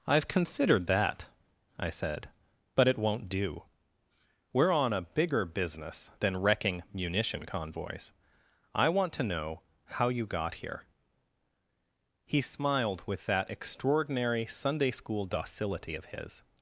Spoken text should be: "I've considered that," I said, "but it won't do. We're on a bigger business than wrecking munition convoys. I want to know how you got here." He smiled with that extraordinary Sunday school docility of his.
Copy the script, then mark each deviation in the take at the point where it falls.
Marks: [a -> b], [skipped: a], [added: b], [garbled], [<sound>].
"I've considered that," I said, "but it won't do. We're on a bigger business than wrecking munition convoys. I want to know how you got here." He smiled with that extraordinary Sunday school docility of his.